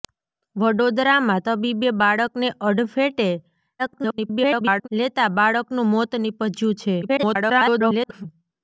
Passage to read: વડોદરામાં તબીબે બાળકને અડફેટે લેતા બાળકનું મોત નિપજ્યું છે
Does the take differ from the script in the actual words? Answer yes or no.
yes